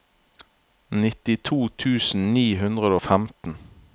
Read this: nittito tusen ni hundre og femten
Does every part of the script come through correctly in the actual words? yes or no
yes